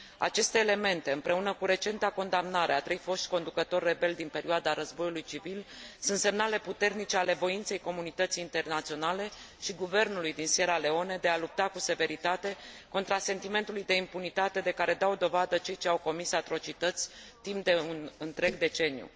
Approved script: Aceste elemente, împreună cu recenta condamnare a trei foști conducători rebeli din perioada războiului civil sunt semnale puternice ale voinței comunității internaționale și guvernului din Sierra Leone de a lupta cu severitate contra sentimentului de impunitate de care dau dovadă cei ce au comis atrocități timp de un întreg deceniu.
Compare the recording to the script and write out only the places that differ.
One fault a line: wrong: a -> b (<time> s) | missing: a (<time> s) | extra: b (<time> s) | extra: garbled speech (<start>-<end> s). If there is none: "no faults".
no faults